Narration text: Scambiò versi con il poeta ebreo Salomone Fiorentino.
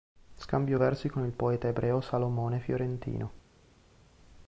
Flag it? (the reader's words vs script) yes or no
no